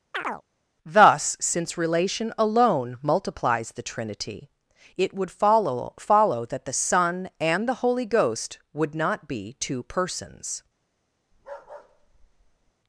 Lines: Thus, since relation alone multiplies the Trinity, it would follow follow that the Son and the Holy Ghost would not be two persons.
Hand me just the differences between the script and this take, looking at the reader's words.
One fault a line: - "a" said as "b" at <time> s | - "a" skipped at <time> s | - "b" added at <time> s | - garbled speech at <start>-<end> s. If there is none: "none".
none